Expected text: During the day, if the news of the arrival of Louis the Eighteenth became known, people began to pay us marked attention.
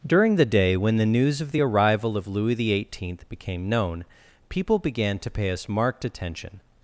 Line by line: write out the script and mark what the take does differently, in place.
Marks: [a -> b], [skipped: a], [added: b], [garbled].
During the day, [if -> when] the news of the arrival of Louis the Eighteenth became known, people began to pay us marked attention.